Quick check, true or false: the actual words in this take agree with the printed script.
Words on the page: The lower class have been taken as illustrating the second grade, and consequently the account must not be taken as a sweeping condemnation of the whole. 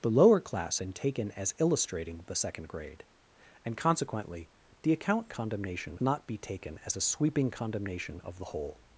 false